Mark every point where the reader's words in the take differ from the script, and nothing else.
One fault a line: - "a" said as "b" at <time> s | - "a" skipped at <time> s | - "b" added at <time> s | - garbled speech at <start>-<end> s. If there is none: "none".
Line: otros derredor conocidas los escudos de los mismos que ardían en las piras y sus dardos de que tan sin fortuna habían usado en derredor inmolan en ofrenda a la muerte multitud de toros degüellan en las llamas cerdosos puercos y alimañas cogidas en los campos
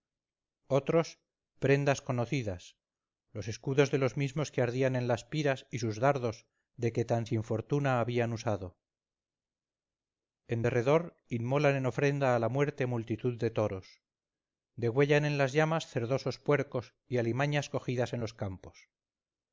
- "derredor" said as "prendas" at 1.6 s